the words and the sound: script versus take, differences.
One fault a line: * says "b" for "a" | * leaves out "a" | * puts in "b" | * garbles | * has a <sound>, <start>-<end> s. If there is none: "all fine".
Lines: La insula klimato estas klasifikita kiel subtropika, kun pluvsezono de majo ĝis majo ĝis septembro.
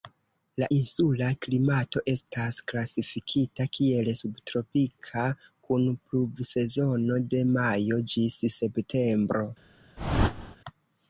* leaves out "majo ĝis"
* has a whoosh, 10.0-10.6 s